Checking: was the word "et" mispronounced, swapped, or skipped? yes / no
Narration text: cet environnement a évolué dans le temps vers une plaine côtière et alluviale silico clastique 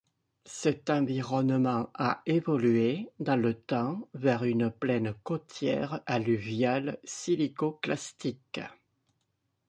yes